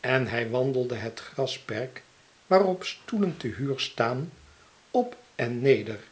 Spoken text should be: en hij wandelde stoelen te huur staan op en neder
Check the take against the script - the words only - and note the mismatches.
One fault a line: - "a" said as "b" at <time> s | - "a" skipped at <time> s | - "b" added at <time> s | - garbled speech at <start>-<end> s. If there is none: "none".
- "het grasperk waarop" added at 1.0 s